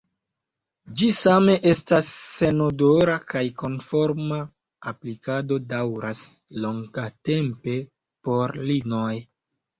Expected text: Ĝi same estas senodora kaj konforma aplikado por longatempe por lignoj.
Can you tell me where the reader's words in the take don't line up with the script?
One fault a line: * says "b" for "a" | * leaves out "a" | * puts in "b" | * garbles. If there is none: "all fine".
* says "daŭras" for "por"